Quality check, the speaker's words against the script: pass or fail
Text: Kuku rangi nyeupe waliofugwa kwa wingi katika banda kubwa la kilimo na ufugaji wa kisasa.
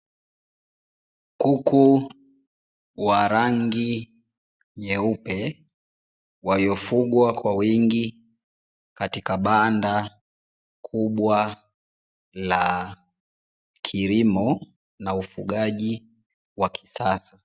fail